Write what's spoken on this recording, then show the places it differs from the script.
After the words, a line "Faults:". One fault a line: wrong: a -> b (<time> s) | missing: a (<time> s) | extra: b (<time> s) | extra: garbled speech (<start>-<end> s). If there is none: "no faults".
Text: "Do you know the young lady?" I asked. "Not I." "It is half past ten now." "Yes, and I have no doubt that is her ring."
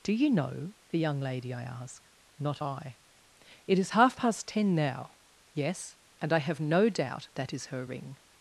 "Do you know the young lady?" I ask. "Not I." "It is half past ten now." "Yes, and I have no doubt that is her ring."
Faults:
wrong: asked -> ask (1.6 s)